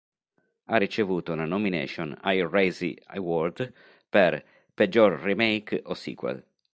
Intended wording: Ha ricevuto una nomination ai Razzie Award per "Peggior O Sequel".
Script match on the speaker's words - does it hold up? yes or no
no